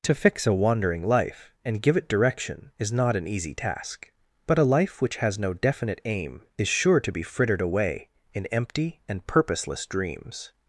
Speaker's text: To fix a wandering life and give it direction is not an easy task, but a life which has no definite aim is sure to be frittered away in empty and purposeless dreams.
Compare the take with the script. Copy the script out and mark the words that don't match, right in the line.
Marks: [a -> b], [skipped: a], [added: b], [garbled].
To fix a wandering life and give it direction is not an easy task, but a life which has no definite aim is sure to be frittered away in empty and purposeless dreams.